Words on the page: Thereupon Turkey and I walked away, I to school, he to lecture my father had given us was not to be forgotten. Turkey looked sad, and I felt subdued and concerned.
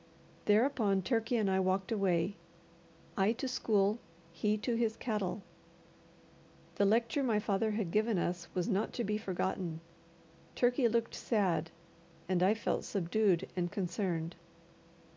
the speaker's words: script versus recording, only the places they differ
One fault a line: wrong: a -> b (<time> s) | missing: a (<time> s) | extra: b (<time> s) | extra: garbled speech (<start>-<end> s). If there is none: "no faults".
extra: his cattle The (4.7 s)